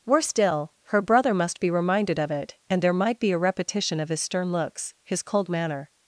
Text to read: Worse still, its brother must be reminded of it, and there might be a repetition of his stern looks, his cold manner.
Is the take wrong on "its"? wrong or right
wrong